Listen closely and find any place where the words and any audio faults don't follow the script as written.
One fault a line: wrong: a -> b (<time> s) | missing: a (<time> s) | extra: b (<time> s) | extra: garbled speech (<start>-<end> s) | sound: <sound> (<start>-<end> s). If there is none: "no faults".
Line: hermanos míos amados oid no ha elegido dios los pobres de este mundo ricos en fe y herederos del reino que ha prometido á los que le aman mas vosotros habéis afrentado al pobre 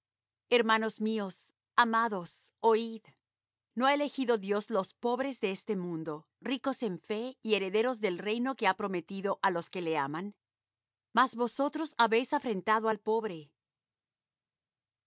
no faults